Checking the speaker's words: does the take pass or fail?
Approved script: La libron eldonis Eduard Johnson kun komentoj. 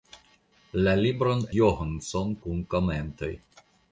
fail